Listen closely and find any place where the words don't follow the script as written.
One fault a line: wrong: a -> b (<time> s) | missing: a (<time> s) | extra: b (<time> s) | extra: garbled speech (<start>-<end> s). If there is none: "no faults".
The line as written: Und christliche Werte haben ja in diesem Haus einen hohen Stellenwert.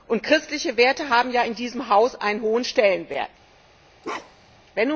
no faults